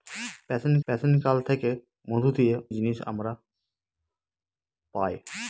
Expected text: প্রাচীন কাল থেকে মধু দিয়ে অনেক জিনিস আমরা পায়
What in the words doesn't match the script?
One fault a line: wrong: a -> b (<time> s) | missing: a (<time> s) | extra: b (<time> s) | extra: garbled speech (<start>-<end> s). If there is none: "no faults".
extra: প্রাচীন (0.9 s)
missing: অনেক (2.5 s)